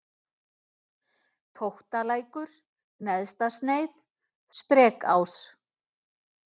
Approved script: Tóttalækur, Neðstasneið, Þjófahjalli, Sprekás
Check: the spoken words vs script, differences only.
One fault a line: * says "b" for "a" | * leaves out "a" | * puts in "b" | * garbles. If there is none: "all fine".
* leaves out "Þjófahjalli"